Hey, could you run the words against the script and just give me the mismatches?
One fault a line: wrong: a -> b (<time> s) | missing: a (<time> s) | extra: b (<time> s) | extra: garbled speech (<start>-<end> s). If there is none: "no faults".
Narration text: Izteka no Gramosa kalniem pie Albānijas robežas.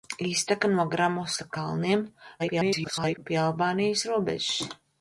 extra: garbled speech (2.4-3.2 s)